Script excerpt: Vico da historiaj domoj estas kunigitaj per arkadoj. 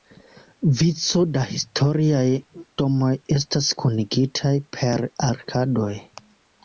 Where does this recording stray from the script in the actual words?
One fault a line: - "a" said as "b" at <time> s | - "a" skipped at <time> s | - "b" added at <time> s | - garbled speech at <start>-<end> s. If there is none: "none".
none